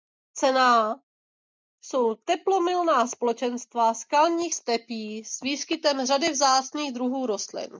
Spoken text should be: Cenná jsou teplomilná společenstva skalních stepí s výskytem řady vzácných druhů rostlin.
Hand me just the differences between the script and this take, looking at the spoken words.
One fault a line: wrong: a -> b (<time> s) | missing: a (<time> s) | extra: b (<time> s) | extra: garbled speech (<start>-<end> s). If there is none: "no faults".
no faults